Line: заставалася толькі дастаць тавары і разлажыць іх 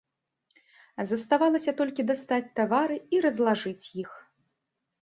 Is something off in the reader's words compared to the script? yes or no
no